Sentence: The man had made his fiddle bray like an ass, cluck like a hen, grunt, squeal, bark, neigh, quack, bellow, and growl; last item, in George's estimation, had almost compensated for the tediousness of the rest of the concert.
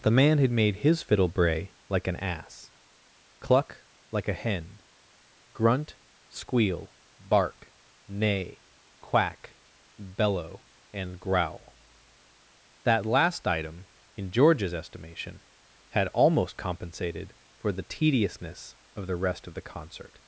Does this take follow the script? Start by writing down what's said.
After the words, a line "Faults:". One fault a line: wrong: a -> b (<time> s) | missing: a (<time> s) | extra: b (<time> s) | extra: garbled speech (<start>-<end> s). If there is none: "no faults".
The man had made his fiddle bray like an ass, cluck like a hen, grunt, squeal, bark, neigh, quack, bellow, and growl; that last item, in George's estimation, had almost compensated for the tediousness of the rest of the concert.
Faults:
extra: that (12.8 s)